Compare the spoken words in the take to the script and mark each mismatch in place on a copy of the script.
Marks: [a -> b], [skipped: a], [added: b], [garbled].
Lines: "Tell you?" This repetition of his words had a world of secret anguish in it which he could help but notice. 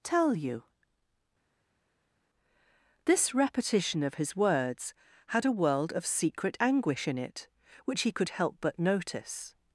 "Tell you?" This repetition of his words had a world of secret anguish in it which he could help but notice.